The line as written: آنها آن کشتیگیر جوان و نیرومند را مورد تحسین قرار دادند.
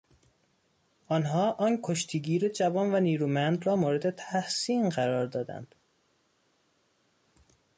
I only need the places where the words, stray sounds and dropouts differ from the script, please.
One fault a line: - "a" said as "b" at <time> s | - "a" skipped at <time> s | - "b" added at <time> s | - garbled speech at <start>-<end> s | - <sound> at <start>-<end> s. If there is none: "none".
none